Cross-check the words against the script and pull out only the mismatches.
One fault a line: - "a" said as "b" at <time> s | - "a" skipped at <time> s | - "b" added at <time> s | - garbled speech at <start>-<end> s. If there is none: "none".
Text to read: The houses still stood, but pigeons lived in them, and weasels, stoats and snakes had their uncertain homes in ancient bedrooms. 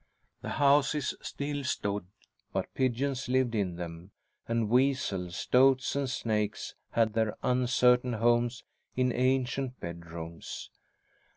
none